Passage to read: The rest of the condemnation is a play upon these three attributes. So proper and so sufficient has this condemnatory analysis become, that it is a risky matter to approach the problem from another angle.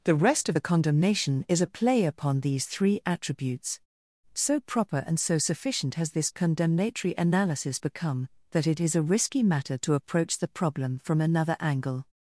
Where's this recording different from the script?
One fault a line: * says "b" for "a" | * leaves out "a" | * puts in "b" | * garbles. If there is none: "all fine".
all fine